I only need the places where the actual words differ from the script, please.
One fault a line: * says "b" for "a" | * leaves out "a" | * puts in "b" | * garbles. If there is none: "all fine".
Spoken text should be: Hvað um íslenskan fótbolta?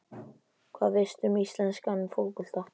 * puts in "veistu"